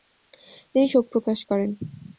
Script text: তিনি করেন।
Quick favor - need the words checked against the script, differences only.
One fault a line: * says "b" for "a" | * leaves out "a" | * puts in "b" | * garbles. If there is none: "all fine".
* puts in "শোক প্রকাশ"